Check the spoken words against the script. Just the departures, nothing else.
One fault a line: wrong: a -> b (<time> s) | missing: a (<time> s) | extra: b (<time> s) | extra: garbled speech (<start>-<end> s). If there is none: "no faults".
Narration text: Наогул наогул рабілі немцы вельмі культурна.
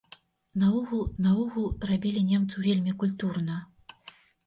no faults